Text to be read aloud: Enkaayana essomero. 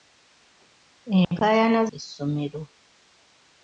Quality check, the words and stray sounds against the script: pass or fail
fail